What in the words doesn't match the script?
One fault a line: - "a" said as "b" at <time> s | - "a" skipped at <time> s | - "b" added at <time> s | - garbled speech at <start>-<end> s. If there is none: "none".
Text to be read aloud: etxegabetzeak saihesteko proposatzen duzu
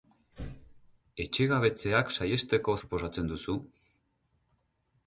none